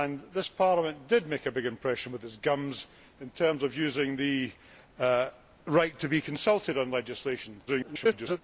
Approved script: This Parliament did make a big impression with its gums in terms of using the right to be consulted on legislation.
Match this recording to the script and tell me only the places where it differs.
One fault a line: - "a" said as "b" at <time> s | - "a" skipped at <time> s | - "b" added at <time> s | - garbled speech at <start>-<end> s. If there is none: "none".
- garbled speech at 7.7-8.4 s